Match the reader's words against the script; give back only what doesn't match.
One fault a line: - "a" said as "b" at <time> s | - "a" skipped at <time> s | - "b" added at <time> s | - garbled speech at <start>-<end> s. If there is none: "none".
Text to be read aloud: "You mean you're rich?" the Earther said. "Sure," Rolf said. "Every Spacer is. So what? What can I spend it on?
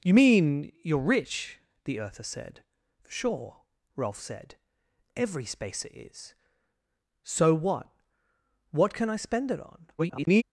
- garbled speech at 10.0-10.4 s